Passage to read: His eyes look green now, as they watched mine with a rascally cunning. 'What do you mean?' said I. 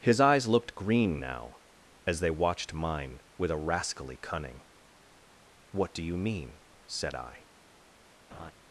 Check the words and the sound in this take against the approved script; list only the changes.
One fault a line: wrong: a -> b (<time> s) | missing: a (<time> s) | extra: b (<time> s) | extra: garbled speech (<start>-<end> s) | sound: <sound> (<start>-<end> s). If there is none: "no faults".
wrong: look -> looked (0.5 s)
sound: laugh (8.3-8.5 s)